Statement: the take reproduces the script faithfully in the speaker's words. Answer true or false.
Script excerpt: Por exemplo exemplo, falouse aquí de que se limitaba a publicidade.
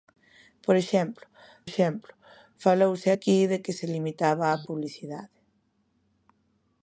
true